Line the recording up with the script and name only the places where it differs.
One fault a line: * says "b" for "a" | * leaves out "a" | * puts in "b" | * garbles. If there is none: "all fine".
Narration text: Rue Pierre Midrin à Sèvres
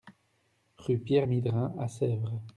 all fine